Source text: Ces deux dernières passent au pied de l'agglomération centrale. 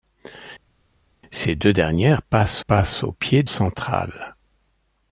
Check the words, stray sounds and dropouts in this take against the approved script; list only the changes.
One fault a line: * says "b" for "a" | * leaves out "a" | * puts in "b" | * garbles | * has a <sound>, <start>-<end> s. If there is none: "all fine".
* puts in "passent"
* leaves out "de l'agglomération"